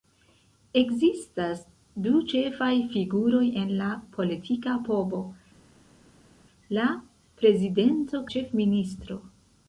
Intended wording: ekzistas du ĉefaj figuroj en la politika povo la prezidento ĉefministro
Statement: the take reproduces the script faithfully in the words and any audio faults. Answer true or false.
true